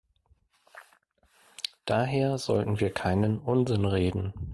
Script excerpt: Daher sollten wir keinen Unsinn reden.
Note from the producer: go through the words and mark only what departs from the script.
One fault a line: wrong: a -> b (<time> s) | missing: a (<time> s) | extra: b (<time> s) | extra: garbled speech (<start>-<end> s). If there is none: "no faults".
no faults